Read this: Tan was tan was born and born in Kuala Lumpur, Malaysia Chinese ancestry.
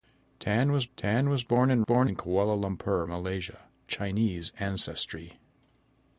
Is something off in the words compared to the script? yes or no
no